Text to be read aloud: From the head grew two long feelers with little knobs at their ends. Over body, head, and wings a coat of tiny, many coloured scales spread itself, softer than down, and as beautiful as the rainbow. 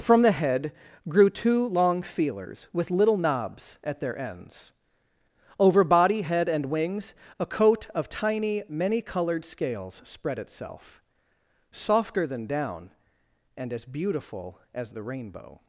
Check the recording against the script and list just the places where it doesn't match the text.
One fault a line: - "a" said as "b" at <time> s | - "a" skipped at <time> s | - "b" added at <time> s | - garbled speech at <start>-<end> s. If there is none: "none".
none